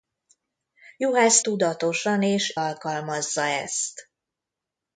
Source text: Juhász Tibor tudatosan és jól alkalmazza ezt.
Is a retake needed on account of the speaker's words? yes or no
yes